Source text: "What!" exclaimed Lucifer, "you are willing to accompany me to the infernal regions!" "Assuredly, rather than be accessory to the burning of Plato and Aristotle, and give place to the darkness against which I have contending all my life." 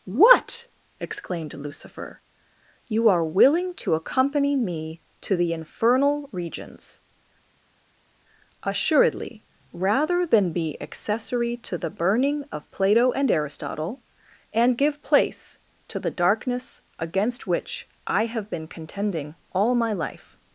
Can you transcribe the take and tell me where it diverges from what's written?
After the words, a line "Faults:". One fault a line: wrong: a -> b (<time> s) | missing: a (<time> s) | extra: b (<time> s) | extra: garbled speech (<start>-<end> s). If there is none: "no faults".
"What!" exclaimed Lucifer, "you are willing to accompany me to the infernal regions!" "Assuredly, rather than be accessory to the burning of Plato and Aristotle, and give place to the darkness against which I have been contending all my life."
Faults:
extra: been (18.5 s)